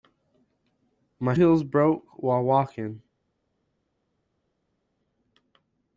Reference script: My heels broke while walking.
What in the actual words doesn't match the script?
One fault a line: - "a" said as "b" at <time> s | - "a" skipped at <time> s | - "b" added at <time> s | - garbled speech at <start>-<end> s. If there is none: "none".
none